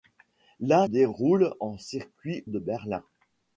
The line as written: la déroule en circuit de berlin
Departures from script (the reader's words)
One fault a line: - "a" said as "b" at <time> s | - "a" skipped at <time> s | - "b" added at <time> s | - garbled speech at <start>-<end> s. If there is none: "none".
none